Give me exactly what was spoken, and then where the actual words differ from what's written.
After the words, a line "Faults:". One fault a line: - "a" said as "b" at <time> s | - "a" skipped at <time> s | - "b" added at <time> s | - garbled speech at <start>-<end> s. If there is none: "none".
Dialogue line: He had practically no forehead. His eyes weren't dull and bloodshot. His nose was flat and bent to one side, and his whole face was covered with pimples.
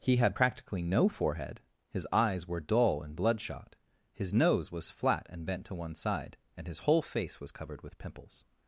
He had practically no forehead. His eyes were dull and bloodshot. His nose was flat and bent to one side, and his whole face was covered with pimples.
Faults:
- "weren't" said as "were" at 2.5 s